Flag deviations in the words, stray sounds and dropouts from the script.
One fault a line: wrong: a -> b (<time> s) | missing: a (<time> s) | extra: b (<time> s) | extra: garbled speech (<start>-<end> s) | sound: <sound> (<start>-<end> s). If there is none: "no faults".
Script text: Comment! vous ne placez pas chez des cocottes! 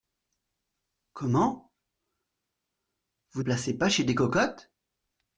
missing: ne (3.4 s)